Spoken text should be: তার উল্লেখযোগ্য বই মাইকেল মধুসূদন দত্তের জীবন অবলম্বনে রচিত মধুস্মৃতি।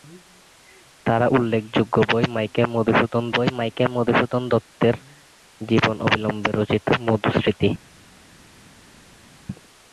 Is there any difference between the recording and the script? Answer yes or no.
yes